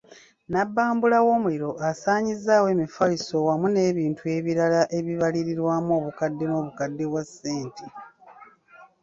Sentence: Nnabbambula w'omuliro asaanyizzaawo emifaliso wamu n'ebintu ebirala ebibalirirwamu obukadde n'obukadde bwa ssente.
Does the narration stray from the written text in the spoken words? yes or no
no